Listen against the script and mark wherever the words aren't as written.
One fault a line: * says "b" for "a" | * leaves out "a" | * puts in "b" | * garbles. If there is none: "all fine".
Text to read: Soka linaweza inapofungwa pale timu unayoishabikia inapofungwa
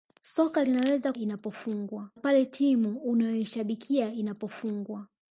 all fine